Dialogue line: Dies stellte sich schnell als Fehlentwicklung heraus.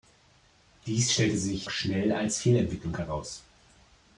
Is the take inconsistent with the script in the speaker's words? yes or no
no